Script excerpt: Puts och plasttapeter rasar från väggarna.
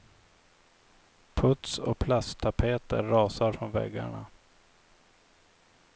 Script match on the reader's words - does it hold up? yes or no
yes